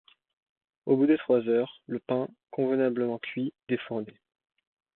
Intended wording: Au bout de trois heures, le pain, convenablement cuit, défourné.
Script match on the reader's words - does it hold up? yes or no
yes